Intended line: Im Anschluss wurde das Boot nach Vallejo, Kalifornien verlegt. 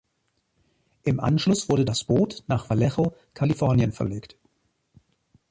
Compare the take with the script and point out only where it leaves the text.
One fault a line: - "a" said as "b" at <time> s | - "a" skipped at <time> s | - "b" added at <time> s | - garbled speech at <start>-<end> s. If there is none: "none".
none